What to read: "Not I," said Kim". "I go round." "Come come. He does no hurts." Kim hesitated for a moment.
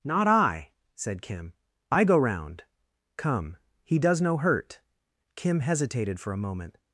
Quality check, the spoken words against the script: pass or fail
fail